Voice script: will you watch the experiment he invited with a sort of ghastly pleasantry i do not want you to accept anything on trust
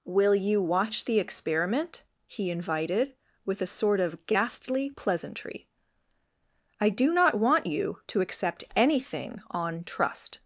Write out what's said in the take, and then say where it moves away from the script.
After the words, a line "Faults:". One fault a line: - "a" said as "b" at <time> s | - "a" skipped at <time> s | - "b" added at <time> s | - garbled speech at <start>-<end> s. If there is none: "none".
will you watch the experiment he invited with a sort of ghastly pleasantry i do not want you to accept anything on trust
Faults:
none